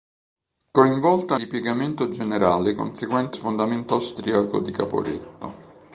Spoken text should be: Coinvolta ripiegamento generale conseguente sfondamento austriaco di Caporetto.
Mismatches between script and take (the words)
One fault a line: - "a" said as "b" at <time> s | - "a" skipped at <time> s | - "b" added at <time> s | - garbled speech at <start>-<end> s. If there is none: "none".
none